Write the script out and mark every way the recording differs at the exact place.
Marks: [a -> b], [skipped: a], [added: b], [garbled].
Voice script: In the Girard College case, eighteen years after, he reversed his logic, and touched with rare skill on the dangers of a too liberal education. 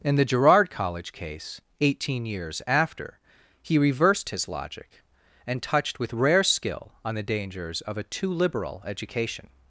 In the Girard College case, eighteen years after, he reversed his logic, and touched with rare skill on the dangers of a too liberal education.